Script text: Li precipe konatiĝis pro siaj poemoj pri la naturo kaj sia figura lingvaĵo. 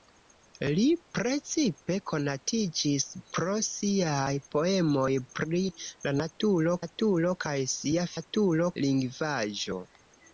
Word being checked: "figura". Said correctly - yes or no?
no